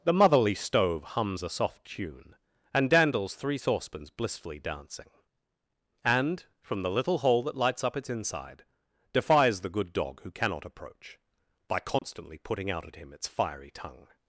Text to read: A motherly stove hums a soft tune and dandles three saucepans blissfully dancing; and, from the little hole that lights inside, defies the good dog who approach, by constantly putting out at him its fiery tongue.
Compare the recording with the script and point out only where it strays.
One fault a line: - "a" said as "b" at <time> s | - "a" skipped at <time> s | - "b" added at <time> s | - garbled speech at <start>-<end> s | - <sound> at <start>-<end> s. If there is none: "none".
- "A" said as "The" at 0.0 s
- "up its" added at 7.8 s
- "cannot" added at 10.3 s
- dropout at 12.0-12.0 s